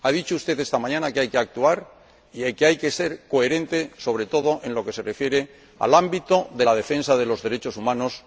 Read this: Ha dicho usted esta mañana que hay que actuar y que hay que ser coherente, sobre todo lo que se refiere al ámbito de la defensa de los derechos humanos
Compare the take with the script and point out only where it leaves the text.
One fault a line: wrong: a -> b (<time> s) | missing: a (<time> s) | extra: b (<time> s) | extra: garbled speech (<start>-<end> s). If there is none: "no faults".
extra: en (4.6 s)